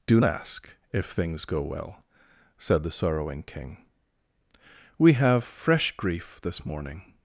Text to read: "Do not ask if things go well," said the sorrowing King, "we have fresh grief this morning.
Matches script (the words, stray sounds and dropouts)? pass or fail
fail